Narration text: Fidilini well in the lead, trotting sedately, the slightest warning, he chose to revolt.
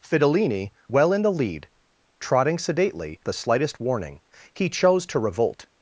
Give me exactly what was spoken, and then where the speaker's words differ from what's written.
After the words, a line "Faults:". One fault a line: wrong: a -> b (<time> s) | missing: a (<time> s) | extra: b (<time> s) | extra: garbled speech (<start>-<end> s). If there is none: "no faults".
Fidilini well in the lead, trotting sedately, the slightest warning, he chose to revolt.
Faults:
no faults